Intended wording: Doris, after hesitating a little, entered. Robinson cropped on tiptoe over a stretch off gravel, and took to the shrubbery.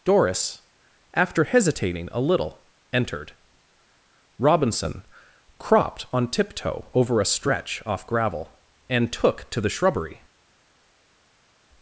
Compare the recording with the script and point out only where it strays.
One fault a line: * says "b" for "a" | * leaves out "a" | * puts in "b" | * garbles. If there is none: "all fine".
all fine